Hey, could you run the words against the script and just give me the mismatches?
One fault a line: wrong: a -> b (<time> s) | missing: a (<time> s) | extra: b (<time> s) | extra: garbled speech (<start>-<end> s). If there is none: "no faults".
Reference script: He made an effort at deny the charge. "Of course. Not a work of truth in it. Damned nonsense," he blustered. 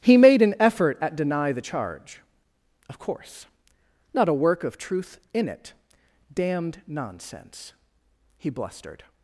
no faults